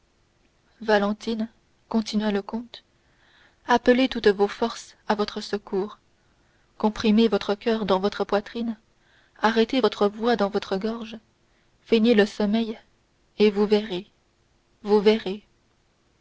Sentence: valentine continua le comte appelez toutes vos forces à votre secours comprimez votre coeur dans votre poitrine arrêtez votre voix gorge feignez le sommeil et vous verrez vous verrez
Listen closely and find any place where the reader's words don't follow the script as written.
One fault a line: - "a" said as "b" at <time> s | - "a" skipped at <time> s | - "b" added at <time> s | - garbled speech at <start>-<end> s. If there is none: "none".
- "dans votre" added at 10.4 s